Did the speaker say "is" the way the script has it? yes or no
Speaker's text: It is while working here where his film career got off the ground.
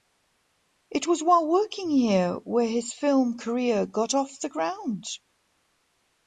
no